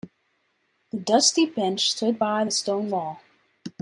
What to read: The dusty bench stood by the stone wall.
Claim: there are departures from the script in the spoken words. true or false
false